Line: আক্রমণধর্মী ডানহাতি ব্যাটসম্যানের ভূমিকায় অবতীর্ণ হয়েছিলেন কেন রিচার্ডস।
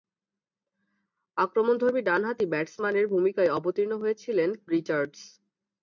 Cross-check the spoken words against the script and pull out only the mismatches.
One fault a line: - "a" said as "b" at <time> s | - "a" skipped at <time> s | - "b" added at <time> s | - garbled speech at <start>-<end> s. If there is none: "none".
- "কেন" skipped at 4.5 s